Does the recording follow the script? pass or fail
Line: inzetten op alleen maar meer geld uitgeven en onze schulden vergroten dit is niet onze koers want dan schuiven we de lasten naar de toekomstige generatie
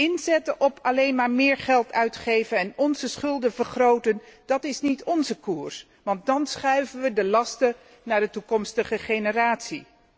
fail